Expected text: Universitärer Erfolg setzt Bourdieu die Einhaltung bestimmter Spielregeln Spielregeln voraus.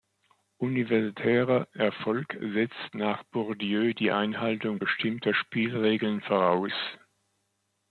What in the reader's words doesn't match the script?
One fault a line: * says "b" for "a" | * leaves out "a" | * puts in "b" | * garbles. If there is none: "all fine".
* puts in "nach"
* leaves out "Spielregeln"